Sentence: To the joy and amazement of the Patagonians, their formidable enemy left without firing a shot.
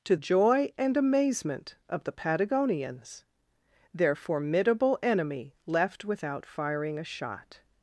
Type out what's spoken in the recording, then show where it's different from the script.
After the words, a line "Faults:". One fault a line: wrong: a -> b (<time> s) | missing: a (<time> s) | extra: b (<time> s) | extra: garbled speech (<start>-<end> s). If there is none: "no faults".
To joy and amazement of the Patagonians, their formidable enemy left without firing a shot.
Faults:
missing: the (0.1 s)